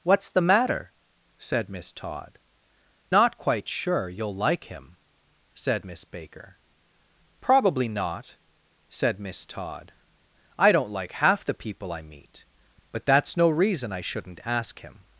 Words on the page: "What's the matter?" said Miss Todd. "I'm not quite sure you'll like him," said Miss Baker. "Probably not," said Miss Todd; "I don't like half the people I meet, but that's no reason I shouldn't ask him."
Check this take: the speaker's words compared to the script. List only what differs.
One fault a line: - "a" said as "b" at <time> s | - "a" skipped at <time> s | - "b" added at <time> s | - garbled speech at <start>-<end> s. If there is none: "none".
- "I'm" skipped at 2.4 s